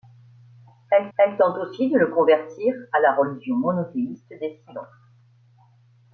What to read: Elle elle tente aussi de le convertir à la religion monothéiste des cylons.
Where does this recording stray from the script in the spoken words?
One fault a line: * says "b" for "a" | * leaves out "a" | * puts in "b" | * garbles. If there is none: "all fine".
all fine